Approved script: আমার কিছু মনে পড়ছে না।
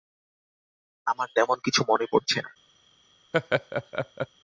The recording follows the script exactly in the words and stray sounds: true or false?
false